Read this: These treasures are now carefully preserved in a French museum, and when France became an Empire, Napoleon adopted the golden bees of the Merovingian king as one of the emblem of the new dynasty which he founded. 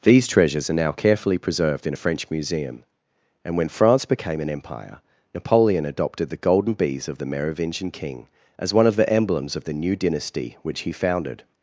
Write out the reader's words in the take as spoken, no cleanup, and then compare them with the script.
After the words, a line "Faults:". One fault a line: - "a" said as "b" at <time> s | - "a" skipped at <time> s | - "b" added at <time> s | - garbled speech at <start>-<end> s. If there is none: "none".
These treasures are now carefully preserved in a French museum, and when France became an Empire, Napoleon adopted the golden bees of the Merovingian king as one of the emblems of the new dynasty which he founded.
Faults:
- "emblem" said as "emblems" at 9.1 s